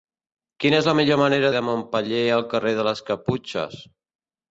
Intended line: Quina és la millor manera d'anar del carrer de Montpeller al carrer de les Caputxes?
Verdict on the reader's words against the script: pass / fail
fail